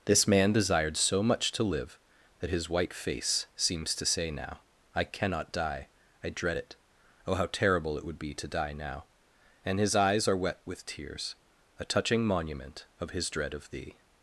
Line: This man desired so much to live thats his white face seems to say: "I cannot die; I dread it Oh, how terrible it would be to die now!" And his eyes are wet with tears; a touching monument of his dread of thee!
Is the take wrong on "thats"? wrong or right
wrong